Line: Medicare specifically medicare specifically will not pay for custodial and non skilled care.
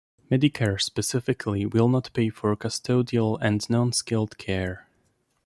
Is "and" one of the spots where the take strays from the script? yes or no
no